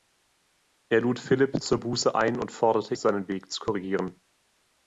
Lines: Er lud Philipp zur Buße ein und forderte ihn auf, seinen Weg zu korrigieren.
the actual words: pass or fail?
fail